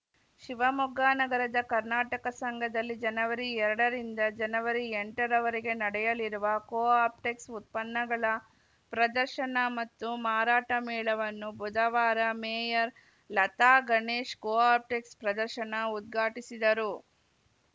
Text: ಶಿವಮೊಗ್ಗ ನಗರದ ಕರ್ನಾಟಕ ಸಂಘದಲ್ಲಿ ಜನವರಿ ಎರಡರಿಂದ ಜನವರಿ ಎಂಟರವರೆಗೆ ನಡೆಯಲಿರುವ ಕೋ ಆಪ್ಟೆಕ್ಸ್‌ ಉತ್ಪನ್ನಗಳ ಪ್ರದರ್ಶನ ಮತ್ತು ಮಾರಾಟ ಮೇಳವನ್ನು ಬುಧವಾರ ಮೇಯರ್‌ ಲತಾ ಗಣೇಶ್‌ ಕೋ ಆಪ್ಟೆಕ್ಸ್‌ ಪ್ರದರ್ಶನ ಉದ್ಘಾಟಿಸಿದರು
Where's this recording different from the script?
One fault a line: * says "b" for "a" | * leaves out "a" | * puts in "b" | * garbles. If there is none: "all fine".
all fine